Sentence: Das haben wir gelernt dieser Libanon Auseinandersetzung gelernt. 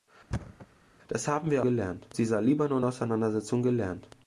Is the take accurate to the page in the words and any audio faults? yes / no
no